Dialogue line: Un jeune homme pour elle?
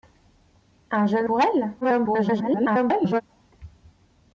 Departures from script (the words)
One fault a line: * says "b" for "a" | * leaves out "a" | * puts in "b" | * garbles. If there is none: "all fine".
* leaves out "homme"
* garbles